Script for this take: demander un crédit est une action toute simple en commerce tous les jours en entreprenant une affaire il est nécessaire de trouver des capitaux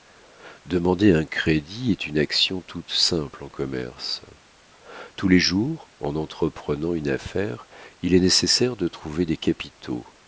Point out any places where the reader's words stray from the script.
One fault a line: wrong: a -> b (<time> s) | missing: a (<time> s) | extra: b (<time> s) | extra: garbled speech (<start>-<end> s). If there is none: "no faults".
no faults